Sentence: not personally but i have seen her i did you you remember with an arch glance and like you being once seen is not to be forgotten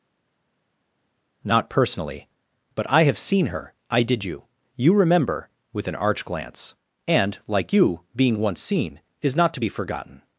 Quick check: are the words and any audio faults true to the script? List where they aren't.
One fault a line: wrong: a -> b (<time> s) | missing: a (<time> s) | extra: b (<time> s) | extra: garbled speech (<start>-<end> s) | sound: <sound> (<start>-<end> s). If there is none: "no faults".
no faults